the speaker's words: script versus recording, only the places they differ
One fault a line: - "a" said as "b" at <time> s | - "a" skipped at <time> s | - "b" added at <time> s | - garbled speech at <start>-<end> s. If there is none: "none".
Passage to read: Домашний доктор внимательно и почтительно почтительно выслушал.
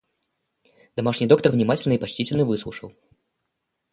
- "почтительно" skipped at 2.5 s